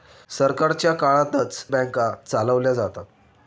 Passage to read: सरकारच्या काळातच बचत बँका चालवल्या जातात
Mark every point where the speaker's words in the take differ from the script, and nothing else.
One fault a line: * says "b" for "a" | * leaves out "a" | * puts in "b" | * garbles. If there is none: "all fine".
* leaves out "बचत"